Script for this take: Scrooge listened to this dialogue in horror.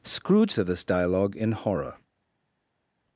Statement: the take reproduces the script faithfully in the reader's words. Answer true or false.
false